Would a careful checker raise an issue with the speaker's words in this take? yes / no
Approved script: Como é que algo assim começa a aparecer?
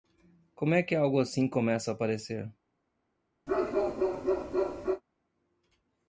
no